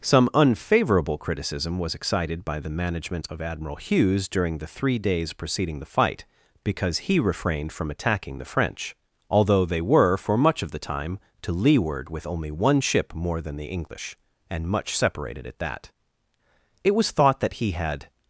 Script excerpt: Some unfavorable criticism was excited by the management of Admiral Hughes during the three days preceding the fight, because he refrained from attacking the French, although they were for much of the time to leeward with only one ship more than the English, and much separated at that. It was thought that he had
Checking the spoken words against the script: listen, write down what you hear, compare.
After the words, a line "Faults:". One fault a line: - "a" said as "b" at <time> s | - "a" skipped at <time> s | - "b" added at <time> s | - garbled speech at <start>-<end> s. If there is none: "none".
Some unfavorable criticism was excited by the management of Admiral Hughes during the three days preceding the fight, because he refrained from attacking the French, although they were for much of the time to leeward with only one ship more than the English, and much separated at that. It was thought that he had
Faults:
none